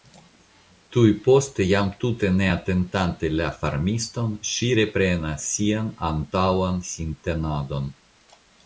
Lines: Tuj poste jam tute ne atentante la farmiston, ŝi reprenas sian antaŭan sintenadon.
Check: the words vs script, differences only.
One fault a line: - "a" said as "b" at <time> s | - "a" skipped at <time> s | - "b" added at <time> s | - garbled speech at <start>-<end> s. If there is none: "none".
none